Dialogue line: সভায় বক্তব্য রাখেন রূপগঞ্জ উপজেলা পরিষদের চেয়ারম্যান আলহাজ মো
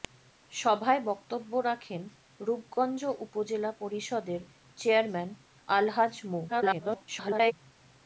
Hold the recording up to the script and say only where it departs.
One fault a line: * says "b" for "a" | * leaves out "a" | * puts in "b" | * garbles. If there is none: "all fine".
* garbles